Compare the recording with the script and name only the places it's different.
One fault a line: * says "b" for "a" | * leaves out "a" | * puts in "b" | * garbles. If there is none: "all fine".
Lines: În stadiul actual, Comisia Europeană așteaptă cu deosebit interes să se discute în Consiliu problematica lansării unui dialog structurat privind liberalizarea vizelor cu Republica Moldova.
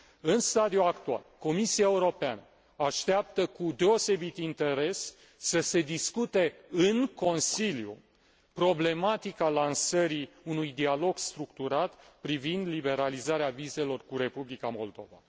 all fine